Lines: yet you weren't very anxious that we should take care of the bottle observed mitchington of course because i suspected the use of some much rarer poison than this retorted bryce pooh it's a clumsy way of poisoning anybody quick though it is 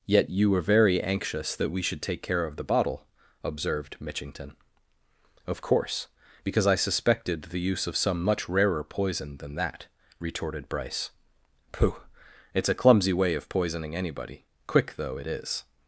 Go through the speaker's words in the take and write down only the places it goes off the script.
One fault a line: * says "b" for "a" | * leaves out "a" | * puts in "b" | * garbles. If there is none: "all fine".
* says "were" for "weren't"
* says "that" for "this"